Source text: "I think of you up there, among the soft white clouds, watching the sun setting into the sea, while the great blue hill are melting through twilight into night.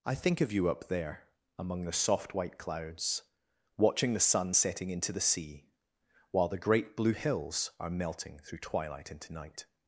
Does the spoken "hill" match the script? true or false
false